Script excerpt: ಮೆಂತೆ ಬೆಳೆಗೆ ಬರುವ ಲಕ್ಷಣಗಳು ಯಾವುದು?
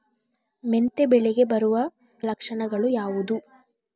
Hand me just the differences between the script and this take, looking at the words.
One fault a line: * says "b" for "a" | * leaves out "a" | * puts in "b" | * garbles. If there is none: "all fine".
all fine